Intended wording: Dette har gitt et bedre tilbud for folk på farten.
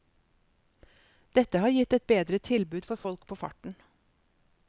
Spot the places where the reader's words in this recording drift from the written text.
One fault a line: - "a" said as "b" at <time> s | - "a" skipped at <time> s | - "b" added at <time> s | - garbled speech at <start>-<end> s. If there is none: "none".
none